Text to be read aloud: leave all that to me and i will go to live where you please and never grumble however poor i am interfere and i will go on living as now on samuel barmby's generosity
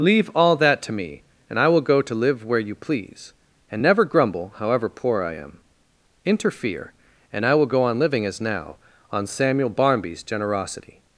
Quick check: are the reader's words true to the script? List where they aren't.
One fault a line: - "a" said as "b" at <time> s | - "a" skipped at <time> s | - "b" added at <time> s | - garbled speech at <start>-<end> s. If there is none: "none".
none